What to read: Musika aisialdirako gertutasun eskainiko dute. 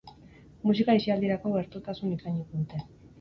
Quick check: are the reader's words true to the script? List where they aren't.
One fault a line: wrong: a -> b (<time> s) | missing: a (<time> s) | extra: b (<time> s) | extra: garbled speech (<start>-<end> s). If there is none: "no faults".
no faults